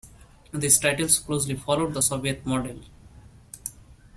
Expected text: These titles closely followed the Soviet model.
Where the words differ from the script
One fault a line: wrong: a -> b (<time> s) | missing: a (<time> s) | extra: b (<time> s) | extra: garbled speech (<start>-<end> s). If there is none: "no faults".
no faults